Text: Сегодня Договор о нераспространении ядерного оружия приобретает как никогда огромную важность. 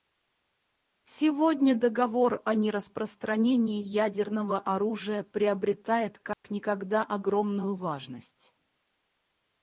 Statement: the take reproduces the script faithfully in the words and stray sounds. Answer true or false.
false